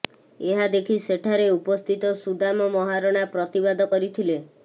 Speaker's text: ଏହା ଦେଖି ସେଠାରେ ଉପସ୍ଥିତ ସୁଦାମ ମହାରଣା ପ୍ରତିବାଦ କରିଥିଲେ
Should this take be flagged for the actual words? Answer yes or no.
no